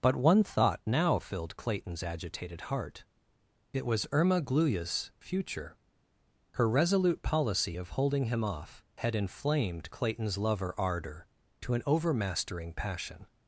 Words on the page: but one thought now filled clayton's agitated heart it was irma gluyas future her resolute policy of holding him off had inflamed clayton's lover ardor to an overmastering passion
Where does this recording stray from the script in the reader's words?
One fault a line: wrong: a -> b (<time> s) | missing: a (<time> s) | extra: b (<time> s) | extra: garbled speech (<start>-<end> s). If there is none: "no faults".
no faults